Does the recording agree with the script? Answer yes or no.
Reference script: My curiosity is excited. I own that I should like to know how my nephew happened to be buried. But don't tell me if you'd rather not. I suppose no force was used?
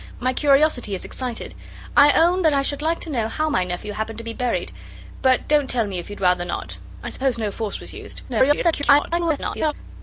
no